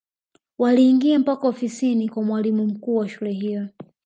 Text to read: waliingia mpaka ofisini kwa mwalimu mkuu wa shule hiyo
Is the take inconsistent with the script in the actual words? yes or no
no